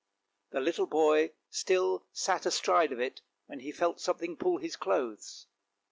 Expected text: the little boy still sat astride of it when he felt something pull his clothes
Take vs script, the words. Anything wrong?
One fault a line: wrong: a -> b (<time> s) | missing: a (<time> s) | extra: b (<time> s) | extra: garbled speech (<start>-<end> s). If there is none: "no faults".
no faults